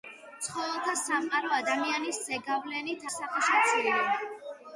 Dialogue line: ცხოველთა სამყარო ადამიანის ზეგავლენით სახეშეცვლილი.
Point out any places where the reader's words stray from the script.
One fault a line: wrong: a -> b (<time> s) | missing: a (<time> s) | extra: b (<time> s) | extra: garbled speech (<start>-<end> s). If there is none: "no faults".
no faults